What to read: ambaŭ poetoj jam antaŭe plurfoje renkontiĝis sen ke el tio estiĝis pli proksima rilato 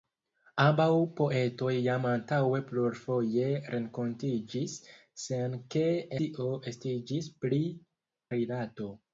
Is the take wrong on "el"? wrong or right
wrong